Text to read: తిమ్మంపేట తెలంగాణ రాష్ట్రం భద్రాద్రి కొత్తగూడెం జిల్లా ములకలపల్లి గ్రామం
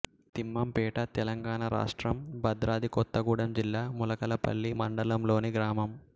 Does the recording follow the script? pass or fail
fail